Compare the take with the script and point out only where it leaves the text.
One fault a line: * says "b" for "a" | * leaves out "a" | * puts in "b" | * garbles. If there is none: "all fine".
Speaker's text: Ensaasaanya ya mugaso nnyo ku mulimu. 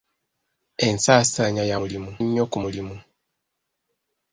* says "mulimu" for "mugaso"